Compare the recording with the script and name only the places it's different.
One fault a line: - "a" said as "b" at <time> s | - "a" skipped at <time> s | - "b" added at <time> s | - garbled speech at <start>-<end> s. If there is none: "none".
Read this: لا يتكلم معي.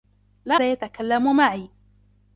none